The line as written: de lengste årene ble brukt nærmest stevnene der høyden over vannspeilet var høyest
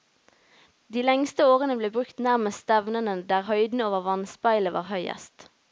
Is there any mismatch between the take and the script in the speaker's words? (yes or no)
no